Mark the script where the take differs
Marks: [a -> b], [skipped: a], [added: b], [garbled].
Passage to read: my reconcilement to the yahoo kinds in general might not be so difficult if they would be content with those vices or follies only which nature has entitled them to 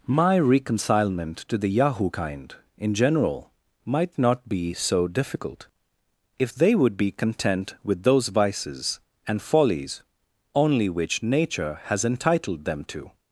my reconcilement to the yahoo [kinds -> kind] in general might not be so difficult if they would be content with those vices [or -> and] follies only which nature has entitled them to